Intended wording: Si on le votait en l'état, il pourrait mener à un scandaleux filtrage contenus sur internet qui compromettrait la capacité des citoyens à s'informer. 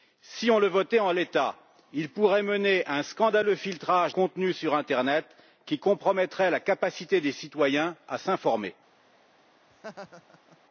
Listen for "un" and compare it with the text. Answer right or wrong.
right